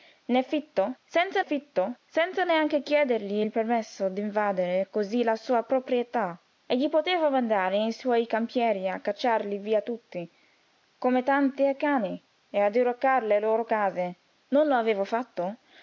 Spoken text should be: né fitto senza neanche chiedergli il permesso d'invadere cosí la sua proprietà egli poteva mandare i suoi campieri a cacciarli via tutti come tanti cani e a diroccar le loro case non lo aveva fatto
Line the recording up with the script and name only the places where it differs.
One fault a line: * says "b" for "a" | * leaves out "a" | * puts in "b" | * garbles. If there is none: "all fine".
* puts in "fitto senza"